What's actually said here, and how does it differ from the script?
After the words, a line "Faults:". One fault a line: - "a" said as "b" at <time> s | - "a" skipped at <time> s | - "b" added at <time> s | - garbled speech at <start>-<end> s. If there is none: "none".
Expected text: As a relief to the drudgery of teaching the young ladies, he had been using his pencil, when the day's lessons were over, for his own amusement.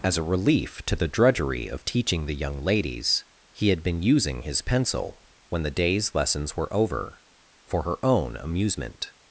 As a relief to the drudgery of teaching the young ladies, he had been using his pencil, when the day's lessons were over, for her own amusement.
Faults:
- "his" said as "her" at 7.8 s